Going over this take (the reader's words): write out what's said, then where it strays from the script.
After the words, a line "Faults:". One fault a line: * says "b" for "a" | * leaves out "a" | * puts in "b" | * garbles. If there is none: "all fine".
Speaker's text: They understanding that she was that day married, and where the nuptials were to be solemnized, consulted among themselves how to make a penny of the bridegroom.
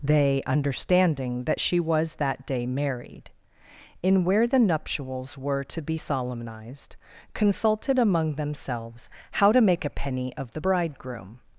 They understanding that she was that day married, in where the nuptials were to be solemnized, consulted among themselves how to make a penny of the bridegroom.
Faults:
* says "in" for "and"